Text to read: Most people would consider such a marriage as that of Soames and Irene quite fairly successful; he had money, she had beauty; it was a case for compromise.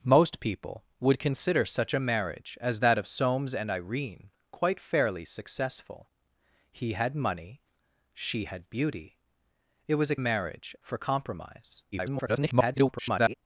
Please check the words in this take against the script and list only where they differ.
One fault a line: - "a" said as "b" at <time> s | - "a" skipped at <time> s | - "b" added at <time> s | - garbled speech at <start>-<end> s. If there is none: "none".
- "case" said as "marriage" at 10.2 s
- garbled speech at 11.9-13.3 s